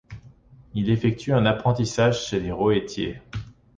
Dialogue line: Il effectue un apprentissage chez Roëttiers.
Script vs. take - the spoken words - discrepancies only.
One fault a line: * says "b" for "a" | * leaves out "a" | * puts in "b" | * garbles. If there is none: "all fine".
* puts in "les"